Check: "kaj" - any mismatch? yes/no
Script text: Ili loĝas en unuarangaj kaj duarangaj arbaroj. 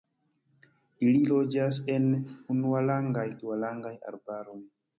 yes